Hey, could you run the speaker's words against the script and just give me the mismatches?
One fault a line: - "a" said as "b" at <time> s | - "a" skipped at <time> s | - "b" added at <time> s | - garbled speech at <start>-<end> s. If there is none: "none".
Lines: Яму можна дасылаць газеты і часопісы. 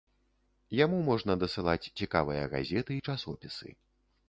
- "цікавыя" added at 2.0 s